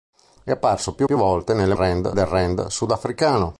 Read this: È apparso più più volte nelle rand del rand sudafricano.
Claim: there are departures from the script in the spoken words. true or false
false